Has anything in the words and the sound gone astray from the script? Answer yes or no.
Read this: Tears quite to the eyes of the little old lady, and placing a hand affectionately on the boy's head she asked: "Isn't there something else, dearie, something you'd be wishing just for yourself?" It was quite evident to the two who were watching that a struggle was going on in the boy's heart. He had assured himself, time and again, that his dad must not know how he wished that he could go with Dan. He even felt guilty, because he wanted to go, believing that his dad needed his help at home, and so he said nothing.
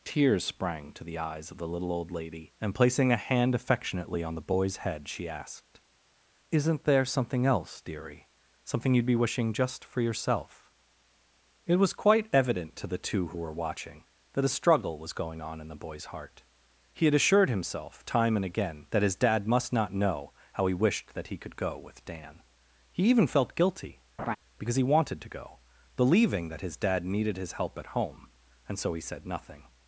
yes